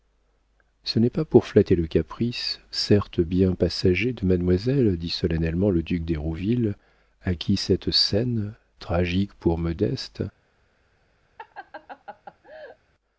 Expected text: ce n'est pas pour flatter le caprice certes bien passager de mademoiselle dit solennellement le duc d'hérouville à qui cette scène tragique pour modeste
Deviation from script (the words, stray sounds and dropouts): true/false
true